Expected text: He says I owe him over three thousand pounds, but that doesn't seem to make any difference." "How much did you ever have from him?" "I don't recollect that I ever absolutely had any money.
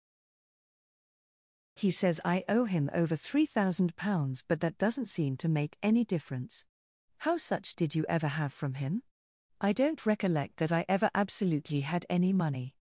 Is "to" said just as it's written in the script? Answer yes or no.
yes